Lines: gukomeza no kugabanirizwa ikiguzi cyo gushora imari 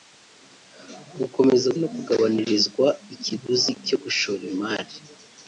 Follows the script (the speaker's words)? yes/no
yes